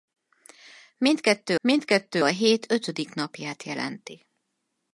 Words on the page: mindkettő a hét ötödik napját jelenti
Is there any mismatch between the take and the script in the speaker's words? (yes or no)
yes